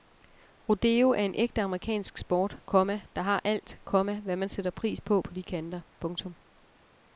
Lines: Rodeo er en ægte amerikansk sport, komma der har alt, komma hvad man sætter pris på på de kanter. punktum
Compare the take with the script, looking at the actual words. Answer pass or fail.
pass